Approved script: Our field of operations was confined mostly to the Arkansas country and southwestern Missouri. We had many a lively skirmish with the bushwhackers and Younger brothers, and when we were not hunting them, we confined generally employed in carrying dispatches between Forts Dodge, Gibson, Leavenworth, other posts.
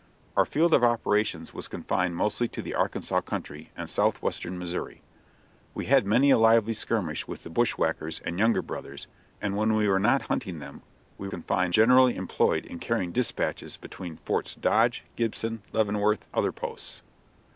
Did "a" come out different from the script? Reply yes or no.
no